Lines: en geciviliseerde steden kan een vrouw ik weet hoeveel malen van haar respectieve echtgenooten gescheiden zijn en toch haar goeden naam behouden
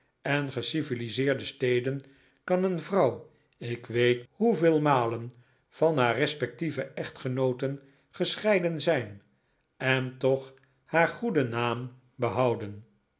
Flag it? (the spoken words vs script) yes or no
no